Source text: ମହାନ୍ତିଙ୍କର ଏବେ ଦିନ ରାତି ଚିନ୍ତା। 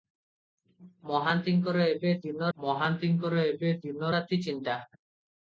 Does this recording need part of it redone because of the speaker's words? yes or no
yes